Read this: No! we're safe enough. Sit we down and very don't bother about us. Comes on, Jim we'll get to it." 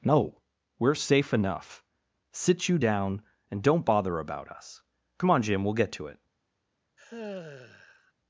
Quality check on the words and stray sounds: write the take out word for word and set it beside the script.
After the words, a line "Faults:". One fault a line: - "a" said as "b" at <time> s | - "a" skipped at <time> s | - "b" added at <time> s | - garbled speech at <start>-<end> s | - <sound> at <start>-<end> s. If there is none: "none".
No! we're safe enough. Sit you down and don't bother about us. Come on, Jim we'll get to it."
Faults:
- "we" said as "you" at 2.7 s
- "very" skipped at 3.6 s
- "Comes" said as "Come" at 5.2 s
- sigh at 7.0-8.1 s